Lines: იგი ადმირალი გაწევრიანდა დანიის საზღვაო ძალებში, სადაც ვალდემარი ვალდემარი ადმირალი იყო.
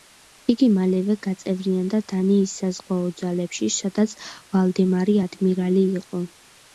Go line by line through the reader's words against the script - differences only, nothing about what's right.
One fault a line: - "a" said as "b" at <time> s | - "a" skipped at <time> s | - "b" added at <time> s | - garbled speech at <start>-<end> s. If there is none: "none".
- "ადმირალი" said as "მალევე" at 0.8 s
- "ვალდემარი" skipped at 5.2 s